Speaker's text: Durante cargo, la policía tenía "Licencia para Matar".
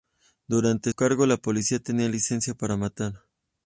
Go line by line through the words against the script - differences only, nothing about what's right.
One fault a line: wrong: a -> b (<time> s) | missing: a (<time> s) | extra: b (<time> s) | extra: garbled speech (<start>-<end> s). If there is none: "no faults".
no faults